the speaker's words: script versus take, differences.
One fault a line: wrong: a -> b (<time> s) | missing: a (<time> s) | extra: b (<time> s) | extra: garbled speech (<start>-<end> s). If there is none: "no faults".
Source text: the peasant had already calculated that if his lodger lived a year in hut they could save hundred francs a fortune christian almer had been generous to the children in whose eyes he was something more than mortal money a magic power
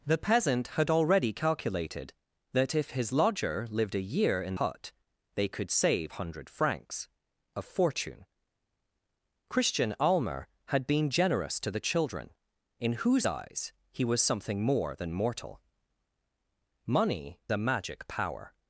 no faults